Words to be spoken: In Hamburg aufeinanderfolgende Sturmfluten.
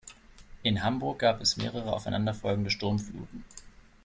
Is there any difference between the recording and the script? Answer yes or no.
yes